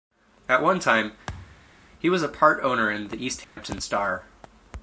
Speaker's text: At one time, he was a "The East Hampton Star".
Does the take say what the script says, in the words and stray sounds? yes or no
no